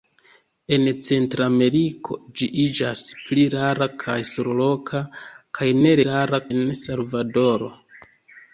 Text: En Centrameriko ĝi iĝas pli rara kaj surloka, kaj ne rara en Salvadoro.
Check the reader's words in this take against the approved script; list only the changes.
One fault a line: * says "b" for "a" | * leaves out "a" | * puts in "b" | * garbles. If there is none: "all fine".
all fine